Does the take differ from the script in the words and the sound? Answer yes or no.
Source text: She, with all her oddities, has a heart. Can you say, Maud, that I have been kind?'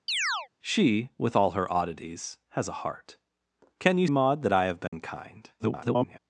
yes